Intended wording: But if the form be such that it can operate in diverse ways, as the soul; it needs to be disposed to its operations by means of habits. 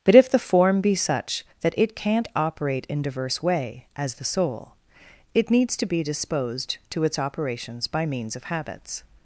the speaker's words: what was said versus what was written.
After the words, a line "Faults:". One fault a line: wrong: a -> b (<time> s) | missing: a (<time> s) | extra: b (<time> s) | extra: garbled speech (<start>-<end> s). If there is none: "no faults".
But if the form be such that it can't operate in diverse way, as the soul; it needs to be disposed to its operations by means of habits.
Faults:
wrong: can -> can't (1.9 s)
wrong: ways -> way (3.4 s)